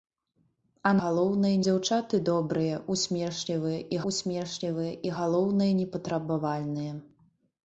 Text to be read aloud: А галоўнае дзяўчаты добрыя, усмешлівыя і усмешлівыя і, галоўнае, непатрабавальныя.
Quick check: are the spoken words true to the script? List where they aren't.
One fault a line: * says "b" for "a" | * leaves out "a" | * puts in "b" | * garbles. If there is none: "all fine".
all fine